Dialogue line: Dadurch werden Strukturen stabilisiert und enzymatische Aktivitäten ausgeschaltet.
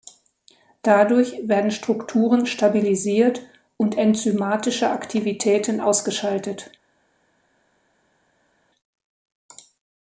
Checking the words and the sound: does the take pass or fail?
pass